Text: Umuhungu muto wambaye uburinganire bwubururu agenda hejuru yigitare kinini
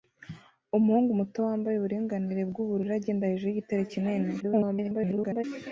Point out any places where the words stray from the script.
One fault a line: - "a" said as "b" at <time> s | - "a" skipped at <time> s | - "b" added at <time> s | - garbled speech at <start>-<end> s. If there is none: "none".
- garbled speech at 4.4-5.4 s